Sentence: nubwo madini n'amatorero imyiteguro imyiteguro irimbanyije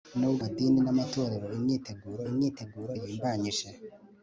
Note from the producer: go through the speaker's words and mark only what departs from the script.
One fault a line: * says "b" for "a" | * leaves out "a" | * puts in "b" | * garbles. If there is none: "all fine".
all fine